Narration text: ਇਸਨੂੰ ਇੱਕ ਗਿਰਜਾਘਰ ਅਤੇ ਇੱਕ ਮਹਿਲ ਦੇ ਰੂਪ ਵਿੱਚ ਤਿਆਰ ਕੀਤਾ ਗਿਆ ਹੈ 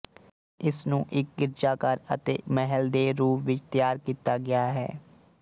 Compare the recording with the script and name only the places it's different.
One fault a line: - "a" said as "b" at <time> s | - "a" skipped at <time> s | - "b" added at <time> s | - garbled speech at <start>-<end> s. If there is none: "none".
- "ਇੱਕ" skipped at 2.4 s